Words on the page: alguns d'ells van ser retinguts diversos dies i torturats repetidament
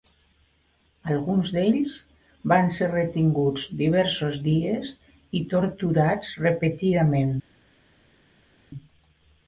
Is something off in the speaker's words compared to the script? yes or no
no